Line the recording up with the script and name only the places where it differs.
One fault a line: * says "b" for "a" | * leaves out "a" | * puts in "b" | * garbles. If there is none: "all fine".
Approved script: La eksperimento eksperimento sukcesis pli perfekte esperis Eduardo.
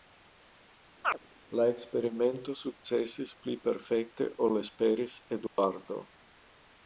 * leaves out "eksperimento"
* puts in "ol"